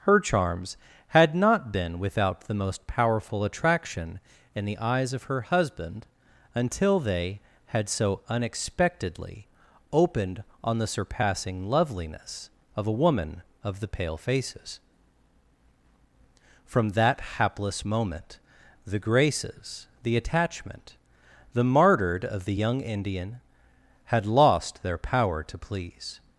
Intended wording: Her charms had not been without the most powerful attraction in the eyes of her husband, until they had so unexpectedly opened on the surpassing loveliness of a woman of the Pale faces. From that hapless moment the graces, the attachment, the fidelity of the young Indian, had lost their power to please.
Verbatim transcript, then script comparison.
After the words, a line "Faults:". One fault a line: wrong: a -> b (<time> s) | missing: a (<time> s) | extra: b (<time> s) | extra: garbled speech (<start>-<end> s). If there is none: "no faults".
Her charms had not been without the most powerful attraction in the eyes of her husband, until they had so unexpectedly opened on the surpassing loveliness of a woman of the Pale faces. From that hapless moment the graces, the attachment, the martyred of the young Indian, had lost their power to please.
Faults:
wrong: fidelity -> martyred (21.6 s)